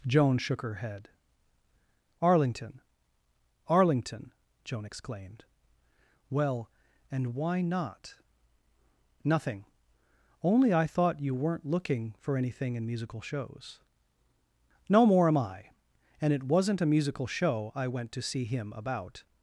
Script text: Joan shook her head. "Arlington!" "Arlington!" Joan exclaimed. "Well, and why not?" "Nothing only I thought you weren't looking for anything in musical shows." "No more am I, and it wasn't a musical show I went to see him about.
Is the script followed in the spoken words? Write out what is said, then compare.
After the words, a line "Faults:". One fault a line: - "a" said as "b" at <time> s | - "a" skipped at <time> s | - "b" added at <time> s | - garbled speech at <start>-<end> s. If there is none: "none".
Joan shook her head. "Arlington!" "Arlington!" Joan exclaimed. "Well, and why not?" "Nothing only I thought you weren't looking for anything in musical shows." "No more am I, and it wasn't a musical show I went to see him about.
Faults:
none